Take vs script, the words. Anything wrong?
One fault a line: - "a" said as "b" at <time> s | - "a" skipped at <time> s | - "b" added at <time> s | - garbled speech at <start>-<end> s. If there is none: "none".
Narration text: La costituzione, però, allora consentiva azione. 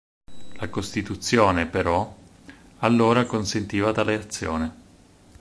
- "tale" added at 3.9 s